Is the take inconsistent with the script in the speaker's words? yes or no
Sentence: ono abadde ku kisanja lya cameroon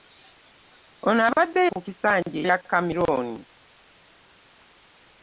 no